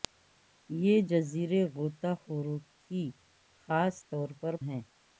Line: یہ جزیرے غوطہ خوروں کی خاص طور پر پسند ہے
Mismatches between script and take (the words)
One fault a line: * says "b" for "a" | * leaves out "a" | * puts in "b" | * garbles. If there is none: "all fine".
* leaves out "پسند"